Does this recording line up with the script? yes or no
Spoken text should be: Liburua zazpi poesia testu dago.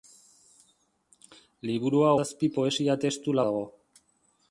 yes